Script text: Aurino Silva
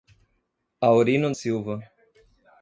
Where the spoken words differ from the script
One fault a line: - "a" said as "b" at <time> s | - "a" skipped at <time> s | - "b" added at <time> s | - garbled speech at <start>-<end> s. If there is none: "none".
none